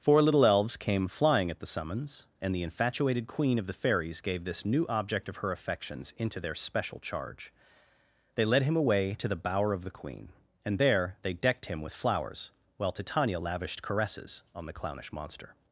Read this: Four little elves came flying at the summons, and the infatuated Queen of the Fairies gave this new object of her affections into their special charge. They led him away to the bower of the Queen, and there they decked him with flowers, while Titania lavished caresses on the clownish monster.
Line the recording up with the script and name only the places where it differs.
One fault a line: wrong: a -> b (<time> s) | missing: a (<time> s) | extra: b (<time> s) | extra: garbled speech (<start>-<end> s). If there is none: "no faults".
no faults